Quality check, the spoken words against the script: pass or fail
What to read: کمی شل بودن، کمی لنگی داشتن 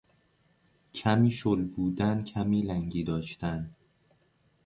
pass